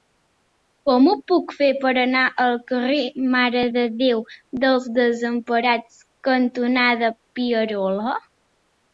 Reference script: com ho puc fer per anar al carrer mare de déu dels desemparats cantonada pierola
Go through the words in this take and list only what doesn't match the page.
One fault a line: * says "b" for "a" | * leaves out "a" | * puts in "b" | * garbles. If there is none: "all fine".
all fine